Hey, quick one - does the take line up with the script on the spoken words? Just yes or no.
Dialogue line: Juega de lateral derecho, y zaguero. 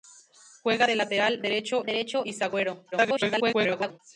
no